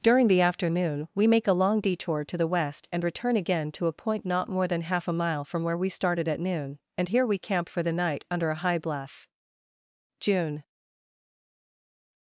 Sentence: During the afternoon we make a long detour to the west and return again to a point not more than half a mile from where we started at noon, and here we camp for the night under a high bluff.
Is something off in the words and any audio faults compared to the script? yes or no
yes